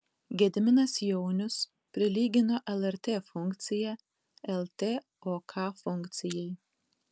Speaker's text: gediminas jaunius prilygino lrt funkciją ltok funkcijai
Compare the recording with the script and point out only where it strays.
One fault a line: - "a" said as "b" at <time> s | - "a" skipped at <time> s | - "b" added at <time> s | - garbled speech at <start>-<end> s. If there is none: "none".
none